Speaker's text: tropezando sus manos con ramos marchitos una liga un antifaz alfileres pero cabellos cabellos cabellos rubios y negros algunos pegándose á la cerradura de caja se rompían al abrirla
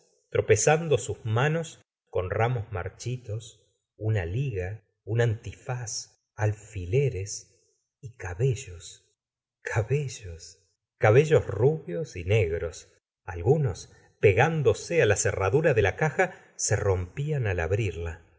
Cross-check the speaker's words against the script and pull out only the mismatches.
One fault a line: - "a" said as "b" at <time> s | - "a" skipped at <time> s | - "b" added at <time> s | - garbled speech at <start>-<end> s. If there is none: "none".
- "pero" said as "y" at 8.0 s
- "la" added at 15.8 s